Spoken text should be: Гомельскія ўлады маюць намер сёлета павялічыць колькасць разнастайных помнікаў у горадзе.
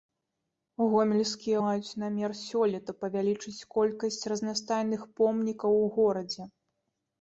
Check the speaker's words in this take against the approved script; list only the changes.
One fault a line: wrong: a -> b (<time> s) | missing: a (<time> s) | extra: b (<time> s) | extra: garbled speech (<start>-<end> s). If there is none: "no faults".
missing: ўлады (1.6 s)